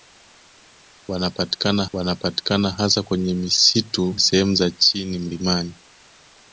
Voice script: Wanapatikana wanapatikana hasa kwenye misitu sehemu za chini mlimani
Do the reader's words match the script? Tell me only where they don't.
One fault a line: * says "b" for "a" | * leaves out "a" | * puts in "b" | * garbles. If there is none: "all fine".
all fine